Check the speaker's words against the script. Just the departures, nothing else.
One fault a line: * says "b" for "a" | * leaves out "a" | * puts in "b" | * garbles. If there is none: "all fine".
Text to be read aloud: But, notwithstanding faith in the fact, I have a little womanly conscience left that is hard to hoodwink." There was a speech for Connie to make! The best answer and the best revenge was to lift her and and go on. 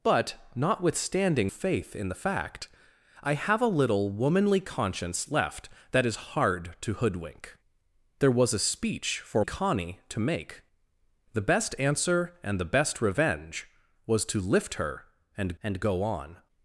all fine